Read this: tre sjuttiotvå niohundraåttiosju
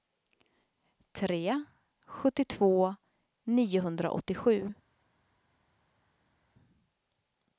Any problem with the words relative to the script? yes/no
no